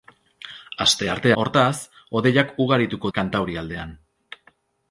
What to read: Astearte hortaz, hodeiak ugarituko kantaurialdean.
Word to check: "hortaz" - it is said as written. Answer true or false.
true